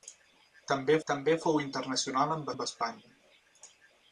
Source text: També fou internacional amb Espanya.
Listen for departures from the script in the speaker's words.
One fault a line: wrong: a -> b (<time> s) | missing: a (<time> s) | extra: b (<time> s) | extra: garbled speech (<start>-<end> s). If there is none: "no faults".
extra: també (1.1 s)
extra: amb (2.5 s)